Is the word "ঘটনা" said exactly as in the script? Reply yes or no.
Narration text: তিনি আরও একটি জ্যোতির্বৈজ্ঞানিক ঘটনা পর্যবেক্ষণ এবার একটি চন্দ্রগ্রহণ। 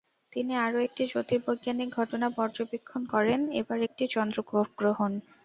yes